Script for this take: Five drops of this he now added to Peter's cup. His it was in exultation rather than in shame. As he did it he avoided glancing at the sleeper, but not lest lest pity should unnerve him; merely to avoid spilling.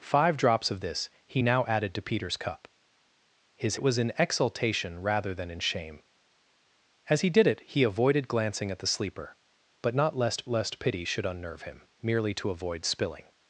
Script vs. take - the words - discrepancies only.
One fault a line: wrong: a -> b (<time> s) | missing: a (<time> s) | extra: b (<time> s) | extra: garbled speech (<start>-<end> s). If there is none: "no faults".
no faults